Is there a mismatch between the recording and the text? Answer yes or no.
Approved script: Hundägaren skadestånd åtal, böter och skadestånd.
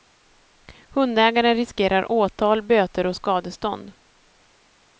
yes